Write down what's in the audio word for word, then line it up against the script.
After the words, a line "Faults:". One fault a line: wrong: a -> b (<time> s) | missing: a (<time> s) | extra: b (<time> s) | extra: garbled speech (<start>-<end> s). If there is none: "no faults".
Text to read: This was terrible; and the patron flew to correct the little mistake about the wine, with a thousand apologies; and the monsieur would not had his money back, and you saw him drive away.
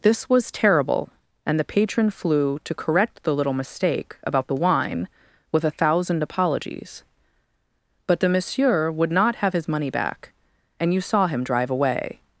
This was terrible; and the patron flew to correct the little mistake about the wine, with a thousand apologies; but the monsieur would not have his money back, and you saw him drive away.
Faults:
wrong: and -> but (8.1 s)
wrong: had -> have (9.4 s)